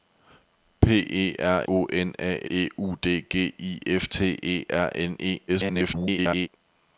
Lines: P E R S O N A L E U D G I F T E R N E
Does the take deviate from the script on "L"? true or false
true